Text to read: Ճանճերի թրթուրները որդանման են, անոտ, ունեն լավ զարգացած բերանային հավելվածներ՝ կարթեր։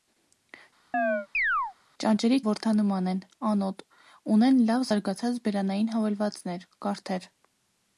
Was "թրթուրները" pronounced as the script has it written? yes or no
no